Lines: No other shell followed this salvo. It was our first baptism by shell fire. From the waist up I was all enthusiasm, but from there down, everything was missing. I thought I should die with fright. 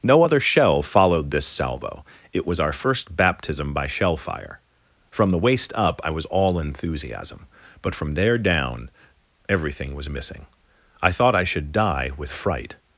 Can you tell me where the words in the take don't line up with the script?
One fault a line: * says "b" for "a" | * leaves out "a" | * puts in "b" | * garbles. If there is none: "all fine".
all fine